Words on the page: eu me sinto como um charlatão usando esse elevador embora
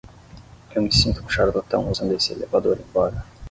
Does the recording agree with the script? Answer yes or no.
no